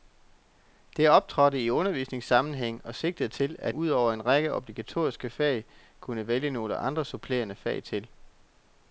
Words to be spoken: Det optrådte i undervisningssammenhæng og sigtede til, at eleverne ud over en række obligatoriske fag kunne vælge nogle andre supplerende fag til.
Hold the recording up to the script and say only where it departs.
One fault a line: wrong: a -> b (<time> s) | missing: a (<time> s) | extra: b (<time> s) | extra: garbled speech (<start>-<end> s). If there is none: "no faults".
missing: eleverne (3.8 s)